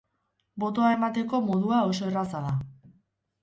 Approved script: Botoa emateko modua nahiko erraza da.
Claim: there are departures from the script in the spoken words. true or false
true